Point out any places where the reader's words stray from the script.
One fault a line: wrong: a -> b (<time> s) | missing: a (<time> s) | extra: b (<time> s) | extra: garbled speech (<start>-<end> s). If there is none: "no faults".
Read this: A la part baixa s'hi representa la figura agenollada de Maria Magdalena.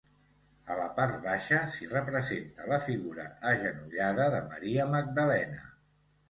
no faults